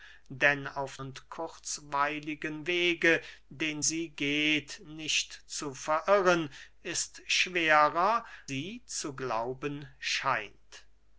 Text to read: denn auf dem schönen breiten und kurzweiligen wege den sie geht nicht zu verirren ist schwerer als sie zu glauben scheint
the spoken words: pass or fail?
fail